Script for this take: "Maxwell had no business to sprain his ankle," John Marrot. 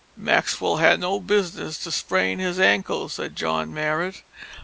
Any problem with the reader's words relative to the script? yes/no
yes